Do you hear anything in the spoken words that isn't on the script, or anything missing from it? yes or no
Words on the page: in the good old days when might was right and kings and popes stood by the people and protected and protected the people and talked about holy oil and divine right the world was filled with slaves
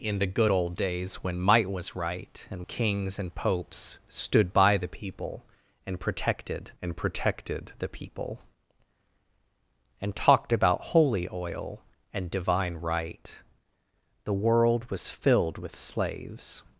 no